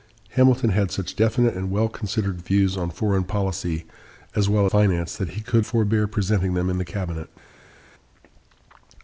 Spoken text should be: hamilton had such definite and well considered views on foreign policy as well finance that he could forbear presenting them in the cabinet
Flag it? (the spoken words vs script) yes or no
no